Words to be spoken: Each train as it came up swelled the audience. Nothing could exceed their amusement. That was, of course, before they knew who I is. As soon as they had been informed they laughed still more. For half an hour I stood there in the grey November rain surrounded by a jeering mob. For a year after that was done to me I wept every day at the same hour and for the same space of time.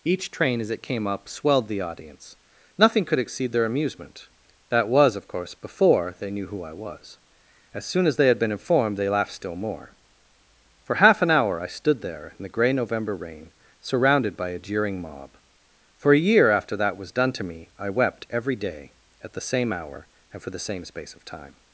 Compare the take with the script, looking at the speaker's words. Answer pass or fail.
fail